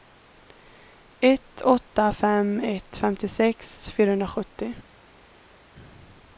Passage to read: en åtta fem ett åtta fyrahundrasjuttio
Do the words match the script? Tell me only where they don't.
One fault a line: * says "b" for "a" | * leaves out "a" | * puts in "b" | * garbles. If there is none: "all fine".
* says "ett" for "en"
* says "femtiosex" for "åtta"